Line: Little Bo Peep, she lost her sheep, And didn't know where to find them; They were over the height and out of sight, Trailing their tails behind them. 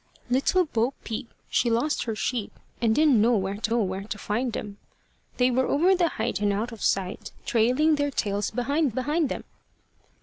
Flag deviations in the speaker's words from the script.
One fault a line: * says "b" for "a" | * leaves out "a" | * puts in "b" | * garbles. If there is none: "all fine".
* puts in "know where to"
* puts in "behind"